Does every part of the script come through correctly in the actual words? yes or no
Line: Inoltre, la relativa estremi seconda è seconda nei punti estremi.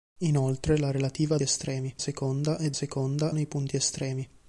yes